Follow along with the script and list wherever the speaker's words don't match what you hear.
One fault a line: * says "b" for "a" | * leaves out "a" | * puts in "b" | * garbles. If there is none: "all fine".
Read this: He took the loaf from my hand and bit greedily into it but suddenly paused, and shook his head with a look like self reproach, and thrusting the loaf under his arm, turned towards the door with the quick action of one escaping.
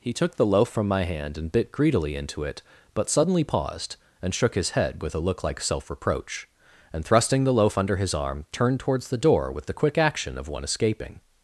all fine